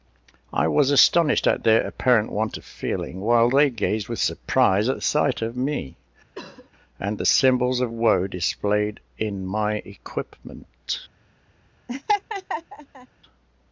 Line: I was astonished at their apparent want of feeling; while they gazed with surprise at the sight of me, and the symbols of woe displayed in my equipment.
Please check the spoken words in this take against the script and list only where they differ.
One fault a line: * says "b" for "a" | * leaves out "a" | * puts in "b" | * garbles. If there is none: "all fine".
all fine